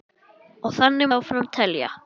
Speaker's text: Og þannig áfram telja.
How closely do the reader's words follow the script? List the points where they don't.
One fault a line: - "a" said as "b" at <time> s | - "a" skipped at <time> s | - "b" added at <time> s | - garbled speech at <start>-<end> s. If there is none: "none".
none